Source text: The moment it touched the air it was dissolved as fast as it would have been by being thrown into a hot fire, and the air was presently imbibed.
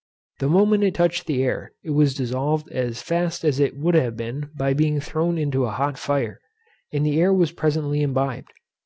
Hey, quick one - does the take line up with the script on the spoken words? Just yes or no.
yes